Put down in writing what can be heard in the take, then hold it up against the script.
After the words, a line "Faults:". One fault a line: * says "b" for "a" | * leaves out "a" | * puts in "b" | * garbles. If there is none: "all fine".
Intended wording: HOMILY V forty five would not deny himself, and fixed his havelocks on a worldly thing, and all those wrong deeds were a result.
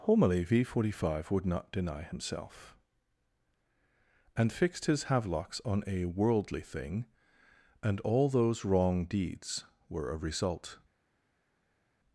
HOMILY V forty five would not deny himself, and fixed his havelocks on a worldly thing, and all those wrong deeds were a result.
Faults:
all fine